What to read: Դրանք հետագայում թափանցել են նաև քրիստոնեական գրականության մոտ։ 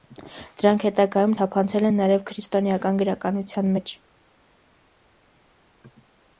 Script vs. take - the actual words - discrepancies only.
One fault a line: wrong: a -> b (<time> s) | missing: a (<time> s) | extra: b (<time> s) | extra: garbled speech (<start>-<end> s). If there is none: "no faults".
wrong: մոտ -> մեջ (3.8 s)